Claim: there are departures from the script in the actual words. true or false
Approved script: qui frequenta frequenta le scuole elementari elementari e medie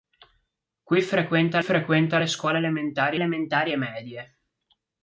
false